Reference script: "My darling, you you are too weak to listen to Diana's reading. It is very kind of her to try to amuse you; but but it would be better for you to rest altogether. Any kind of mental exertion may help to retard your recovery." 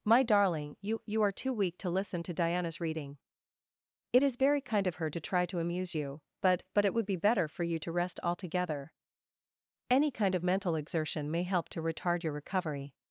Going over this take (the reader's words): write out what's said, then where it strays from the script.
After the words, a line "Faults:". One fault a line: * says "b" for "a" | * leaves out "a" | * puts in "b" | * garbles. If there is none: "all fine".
"My darling, you you are too weak to listen to Diana's reading. It is very kind of her to try to amuse you; but but it would be better for you to rest altogether. Any kind of mental exertion may help to retard your recovery."
Faults:
all fine